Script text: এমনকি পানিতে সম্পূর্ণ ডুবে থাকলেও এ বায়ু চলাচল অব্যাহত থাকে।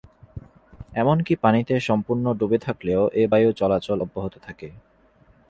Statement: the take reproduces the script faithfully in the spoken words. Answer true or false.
true